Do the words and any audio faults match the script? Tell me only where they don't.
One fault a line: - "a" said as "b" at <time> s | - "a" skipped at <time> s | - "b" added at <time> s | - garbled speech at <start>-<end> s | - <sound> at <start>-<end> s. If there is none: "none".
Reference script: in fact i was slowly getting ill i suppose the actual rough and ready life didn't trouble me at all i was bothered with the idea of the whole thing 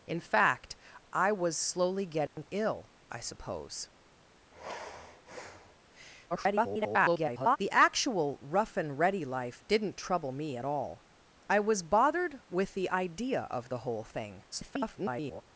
- dropout at 2.3-2.4 s
- sigh at 4.5-5.7 s
- garbled speech at 6.3-7.6 s
- garbled speech at 14.5-15.4 s